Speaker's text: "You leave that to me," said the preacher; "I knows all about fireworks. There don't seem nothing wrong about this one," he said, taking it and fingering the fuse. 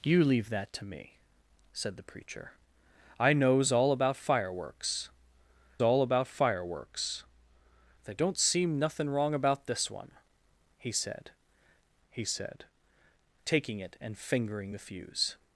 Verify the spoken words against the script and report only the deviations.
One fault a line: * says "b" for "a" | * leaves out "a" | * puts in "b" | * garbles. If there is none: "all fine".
* puts in "all about fireworks"
* puts in "he said"